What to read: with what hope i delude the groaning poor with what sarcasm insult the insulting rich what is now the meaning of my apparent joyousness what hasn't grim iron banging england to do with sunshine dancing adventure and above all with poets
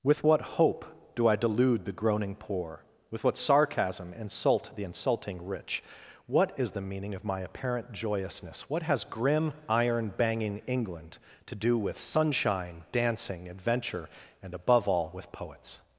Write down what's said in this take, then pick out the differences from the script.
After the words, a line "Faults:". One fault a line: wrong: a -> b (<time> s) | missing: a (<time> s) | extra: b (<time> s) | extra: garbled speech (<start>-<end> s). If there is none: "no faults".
with what hope do i delude the groaning poor with what sarcasm insult the insulting rich what is the meaning of my apparent joyousness what has grim iron banging england to do with sunshine dancing adventure and above all with poets
Faults:
extra: do (1.1 s)
missing: now (6.7 s)
wrong: hasn't -> has (8.8 s)